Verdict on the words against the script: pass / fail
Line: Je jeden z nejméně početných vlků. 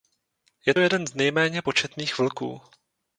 pass